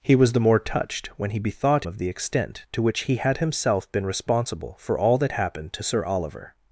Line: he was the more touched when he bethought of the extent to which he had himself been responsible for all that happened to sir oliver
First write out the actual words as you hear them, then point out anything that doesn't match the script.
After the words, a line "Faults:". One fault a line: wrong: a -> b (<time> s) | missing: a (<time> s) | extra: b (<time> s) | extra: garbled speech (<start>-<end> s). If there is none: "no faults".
he was the more touched when he bethought of the extent to which he had himself been responsible for all that happened to sir oliver
Faults:
no faults